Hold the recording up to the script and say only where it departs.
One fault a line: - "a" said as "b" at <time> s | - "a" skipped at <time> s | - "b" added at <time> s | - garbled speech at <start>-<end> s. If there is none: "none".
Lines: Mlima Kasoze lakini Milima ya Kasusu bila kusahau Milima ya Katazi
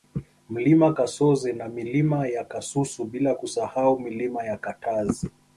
- "lakini" said as "na" at 1.5 s